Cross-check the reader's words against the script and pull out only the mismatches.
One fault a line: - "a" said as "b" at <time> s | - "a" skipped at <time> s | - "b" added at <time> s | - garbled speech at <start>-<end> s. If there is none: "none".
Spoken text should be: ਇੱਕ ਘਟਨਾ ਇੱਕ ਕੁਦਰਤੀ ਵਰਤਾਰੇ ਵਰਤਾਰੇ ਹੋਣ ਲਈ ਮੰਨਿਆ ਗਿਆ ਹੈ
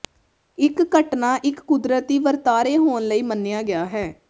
- "ਵਰਤਾਰੇ" skipped at 2.8 s